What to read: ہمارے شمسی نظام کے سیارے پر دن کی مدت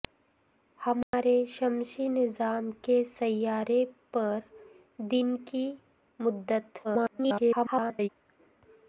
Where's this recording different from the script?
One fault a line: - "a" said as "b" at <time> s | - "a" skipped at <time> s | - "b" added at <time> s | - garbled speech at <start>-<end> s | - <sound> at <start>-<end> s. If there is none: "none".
- dropout at 1.0-1.1 s
- garbled speech at 6.8-8.1 s